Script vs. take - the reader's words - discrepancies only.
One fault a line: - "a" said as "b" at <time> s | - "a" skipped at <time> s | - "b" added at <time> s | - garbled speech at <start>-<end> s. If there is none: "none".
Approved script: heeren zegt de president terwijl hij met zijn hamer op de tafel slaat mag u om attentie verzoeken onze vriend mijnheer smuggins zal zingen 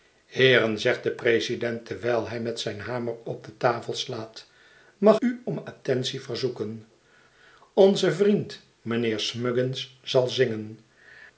none